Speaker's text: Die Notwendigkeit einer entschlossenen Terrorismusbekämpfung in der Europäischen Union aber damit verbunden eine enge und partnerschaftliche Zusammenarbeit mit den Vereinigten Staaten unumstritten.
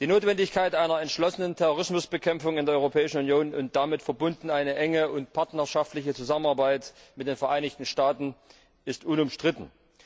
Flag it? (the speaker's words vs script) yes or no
yes